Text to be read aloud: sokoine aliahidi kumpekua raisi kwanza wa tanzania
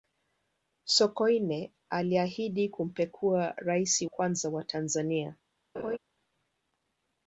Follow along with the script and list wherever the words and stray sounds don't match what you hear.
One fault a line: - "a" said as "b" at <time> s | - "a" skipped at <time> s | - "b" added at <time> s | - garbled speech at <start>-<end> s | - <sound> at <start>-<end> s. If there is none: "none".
- laugh at 5.7-6.0 s